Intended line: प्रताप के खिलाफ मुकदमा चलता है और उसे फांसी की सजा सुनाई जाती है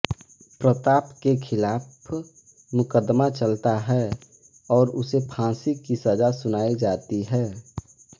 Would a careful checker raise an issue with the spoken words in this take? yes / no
no